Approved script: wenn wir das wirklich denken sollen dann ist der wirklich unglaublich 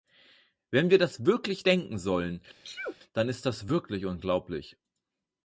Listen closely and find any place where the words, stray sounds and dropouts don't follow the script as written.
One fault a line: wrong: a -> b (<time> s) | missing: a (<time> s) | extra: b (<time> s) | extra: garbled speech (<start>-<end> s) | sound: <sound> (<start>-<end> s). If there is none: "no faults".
sound: sneeze (2.6-3.0 s)
wrong: der -> das (3.4 s)